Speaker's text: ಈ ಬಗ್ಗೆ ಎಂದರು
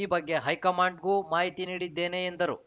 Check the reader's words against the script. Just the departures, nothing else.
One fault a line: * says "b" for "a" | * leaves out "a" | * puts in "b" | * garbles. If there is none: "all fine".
* puts in "ಹೈಕಮಾಂಡ್‌ಗೂ ಮಾಹಿತಿ ನೀಡಿದ್ದೇನೆ"